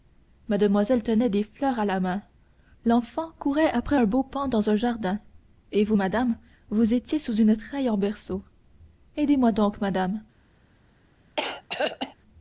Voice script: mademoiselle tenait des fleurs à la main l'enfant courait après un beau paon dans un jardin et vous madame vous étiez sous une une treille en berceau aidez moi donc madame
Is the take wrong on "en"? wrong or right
right